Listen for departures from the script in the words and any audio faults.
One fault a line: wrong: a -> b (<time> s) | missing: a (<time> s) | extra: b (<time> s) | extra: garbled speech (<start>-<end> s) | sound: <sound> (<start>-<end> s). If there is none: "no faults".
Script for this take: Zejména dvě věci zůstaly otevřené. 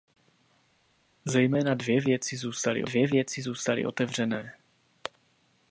extra: dvě věci zůstaly (2.8 s)